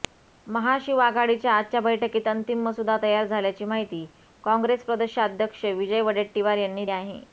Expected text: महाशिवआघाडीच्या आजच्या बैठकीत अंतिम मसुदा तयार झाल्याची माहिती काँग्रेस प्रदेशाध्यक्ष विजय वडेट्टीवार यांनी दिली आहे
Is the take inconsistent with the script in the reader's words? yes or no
yes